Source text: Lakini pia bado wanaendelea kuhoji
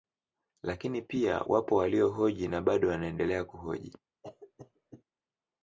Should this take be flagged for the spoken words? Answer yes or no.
yes